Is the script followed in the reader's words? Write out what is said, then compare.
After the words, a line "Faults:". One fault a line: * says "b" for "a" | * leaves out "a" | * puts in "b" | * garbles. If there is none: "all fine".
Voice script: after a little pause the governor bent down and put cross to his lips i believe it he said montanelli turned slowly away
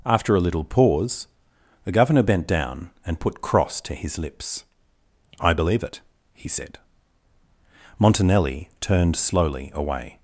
after a little pause the governor bent down and put cross to his lips i believe it he said montanelli turned slowly away
Faults:
all fine